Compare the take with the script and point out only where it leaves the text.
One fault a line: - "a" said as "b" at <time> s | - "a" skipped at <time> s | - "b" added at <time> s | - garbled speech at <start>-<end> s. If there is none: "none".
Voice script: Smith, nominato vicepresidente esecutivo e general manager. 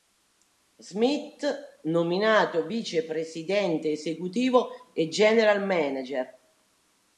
none